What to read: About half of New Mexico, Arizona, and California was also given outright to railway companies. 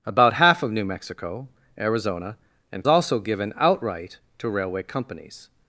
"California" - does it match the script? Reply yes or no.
no